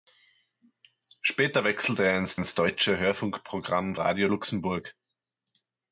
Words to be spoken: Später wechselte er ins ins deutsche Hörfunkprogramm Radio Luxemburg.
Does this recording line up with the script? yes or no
yes